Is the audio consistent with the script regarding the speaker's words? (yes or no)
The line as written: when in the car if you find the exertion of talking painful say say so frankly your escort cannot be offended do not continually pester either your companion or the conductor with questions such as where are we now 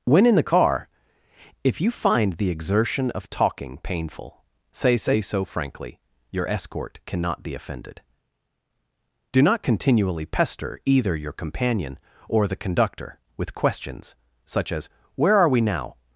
yes